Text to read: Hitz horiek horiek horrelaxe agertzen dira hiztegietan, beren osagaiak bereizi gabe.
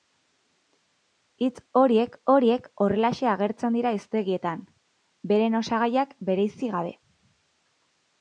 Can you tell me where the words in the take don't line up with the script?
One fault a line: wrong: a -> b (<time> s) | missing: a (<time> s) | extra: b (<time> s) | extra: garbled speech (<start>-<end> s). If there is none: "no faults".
no faults